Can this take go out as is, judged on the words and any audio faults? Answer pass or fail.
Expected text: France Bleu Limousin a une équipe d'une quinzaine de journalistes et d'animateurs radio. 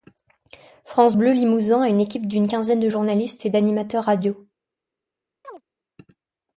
fail